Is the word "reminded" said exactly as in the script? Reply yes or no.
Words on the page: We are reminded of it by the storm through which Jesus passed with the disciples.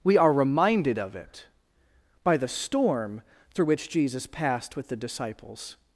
yes